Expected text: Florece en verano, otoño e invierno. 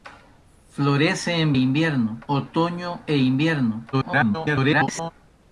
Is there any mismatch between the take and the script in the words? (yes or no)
yes